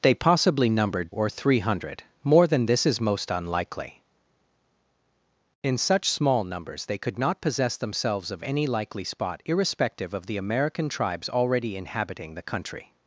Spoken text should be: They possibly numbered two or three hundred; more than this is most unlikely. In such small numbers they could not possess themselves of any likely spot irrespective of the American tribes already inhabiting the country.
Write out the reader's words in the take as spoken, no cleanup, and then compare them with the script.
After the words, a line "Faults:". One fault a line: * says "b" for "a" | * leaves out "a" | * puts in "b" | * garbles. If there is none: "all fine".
They possibly numbered or three hundred; more than this is most unlikely. In such small numbers they could not possess themselves of any likely spot irrespective of the American tribes already inhabiting the country.
Faults:
* leaves out "two"